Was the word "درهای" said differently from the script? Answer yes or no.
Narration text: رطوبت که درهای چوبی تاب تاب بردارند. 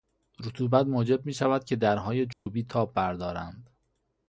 no